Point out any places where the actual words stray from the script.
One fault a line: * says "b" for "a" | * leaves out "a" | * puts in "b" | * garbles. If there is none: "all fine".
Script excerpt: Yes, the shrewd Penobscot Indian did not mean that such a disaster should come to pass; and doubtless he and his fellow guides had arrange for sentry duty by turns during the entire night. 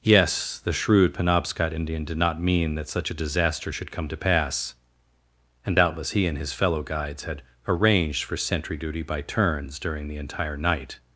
* says "arranged" for "arrange"